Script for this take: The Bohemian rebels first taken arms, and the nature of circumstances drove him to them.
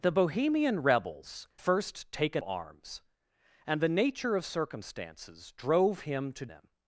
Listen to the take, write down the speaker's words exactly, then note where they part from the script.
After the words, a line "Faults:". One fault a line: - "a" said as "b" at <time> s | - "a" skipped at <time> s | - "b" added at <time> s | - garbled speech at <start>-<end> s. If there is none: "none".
The Bohemian rebels first taken arms, and the nature of circumstances drove him to them.
Faults:
none